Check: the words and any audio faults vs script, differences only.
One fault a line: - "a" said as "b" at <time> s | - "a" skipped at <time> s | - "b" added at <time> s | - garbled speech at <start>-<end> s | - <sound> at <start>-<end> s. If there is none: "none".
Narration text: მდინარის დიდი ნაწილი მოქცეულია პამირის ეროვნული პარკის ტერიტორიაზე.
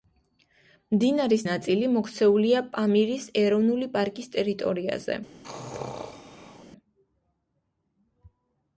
- "დიდი" skipped at 1.4 s
- sneeze at 5.4-6.7 s